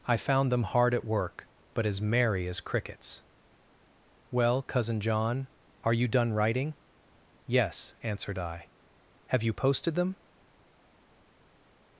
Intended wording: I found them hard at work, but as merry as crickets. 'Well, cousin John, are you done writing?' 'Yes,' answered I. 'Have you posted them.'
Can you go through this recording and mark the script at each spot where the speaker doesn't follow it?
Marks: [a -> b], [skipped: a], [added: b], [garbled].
I found them hard at work, but as merry as crickets. 'Well, cousin John, are you done writing?' 'Yes,' answered I. 'Have you posted them.'